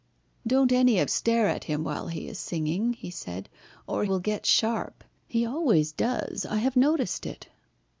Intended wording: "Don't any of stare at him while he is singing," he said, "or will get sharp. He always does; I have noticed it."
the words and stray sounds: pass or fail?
pass